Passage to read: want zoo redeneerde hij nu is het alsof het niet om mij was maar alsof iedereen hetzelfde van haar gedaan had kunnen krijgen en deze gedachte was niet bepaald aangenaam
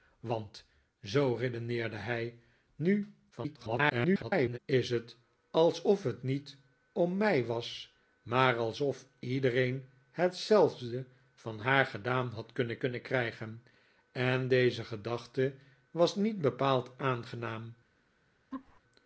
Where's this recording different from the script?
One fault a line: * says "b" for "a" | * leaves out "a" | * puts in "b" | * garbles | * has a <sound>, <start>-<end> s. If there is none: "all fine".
* garbles
* puts in "kunnen"
* has a laugh, 18.5-18.8 s